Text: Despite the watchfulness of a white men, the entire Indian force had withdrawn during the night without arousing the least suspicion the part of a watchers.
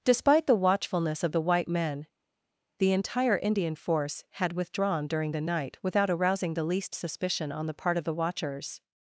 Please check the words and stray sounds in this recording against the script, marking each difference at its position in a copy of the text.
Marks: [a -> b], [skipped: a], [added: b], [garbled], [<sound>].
Despite the watchfulness of [a -> the] white men, the entire Indian force had withdrawn during the night without arousing the least suspicion [added: on] the part of [a -> the] watchers.